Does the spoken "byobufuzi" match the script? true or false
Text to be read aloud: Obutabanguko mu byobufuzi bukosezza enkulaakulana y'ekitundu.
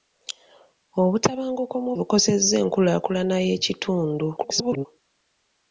false